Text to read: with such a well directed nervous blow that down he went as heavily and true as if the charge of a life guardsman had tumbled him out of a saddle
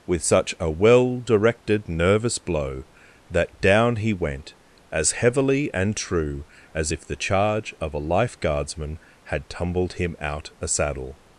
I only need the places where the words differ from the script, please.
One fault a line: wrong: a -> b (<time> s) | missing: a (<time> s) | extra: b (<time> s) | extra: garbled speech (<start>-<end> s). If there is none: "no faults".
missing: of (10.5 s)